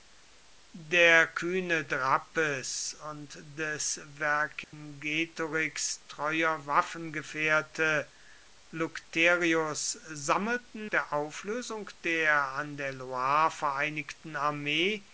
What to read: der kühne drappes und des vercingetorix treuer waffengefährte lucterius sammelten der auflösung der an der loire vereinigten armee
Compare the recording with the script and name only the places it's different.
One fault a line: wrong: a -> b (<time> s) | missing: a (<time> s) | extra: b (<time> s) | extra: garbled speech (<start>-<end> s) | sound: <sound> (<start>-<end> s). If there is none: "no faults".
sound: dropout (4.6-4.7 s)